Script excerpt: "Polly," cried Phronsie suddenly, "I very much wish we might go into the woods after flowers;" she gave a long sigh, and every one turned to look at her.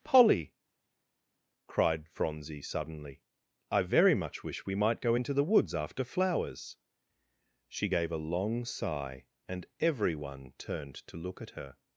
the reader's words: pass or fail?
pass